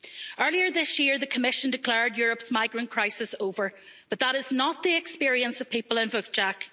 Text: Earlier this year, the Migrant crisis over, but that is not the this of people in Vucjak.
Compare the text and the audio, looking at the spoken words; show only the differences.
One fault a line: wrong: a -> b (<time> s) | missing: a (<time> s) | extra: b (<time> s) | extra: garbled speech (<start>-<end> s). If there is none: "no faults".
extra: Commission declared Europe's (1.3 s)
wrong: this -> experience (5.0 s)